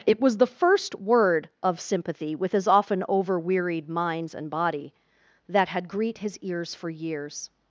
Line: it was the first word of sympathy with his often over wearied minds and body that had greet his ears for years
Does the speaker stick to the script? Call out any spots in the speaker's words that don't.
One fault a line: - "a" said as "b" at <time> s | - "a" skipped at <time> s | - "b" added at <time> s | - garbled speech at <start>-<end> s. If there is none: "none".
none